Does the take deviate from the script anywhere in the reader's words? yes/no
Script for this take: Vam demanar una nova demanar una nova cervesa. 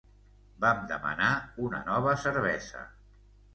yes